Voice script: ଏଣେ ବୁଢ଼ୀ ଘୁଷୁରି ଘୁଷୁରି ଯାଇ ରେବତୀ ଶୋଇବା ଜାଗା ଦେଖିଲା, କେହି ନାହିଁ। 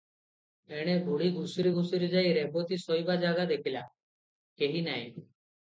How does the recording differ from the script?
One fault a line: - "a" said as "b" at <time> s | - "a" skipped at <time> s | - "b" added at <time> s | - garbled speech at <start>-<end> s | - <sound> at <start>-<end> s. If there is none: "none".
none